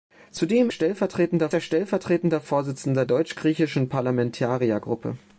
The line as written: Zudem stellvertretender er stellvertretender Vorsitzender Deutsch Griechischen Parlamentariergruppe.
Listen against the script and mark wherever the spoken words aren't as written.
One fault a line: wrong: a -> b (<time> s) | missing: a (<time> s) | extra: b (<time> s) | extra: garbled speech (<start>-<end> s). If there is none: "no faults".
no faults